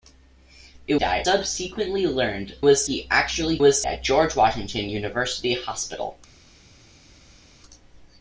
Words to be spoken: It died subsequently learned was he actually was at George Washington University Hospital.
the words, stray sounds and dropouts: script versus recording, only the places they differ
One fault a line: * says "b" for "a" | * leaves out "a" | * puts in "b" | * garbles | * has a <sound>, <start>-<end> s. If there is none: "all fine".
all fine